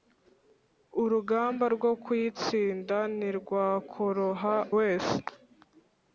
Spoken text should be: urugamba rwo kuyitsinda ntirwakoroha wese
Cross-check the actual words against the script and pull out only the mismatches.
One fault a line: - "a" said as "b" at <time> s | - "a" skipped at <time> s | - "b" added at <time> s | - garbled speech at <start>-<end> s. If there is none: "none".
none